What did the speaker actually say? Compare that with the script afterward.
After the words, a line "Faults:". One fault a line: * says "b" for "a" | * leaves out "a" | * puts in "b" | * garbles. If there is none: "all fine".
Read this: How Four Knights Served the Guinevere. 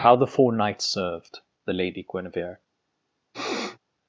How the Four Knights Served the Lady Guinevere.
Faults:
* puts in "the"
* puts in "Lady"